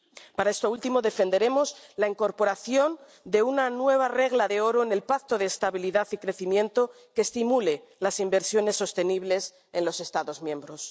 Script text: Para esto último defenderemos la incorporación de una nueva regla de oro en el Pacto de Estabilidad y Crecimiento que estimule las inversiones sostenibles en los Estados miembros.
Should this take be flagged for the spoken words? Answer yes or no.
no